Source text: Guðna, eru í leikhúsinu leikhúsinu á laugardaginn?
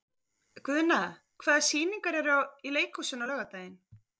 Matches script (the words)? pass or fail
fail